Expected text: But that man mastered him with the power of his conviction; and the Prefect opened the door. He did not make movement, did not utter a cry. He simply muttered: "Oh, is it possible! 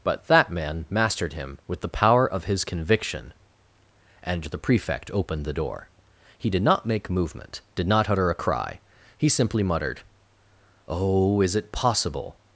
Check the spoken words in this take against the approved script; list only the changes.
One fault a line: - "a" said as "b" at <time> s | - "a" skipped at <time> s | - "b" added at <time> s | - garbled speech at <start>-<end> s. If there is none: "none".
none